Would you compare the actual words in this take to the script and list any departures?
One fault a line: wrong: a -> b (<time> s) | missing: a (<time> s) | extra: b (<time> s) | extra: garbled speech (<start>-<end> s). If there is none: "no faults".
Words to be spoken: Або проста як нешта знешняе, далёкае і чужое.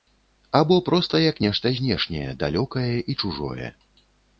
no faults